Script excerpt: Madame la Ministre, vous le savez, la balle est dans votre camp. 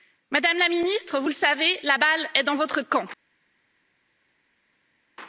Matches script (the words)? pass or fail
pass